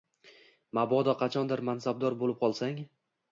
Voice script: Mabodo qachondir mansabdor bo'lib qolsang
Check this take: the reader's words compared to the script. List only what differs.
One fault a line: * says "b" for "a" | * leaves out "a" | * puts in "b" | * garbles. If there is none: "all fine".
all fine